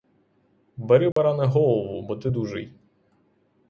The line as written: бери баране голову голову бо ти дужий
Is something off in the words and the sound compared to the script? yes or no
yes